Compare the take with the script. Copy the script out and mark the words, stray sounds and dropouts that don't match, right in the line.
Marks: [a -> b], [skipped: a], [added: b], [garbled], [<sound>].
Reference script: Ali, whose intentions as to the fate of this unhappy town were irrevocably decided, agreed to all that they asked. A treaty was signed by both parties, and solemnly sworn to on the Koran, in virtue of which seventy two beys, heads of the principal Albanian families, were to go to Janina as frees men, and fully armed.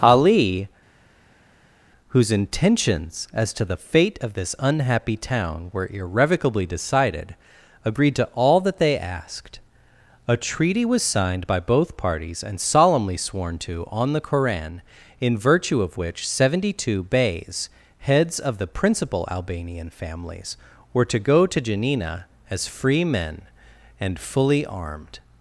Ali, whose intentions as to the fate of this unhappy town were irrevocably decided, agreed to all that they asked. A treaty was signed by both parties, and solemnly sworn to on the Koran, in virtue of which seventy two beys, heads of the principal Albanian families, were to go to Janina as [frees -> free] men, and fully armed.